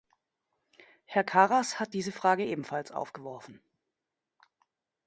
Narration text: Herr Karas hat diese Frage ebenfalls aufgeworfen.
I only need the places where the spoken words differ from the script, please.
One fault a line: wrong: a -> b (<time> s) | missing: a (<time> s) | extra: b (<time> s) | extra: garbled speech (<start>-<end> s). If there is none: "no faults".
no faults